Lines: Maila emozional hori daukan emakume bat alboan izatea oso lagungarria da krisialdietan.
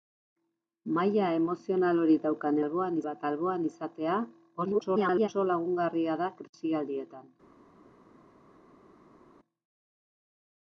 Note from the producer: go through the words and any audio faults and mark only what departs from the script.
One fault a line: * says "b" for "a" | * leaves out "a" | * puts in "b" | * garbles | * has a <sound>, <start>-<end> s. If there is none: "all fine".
* says "alboan" for "emakume"
* garbles